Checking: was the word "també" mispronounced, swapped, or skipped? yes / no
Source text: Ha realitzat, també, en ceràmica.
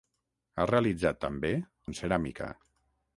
no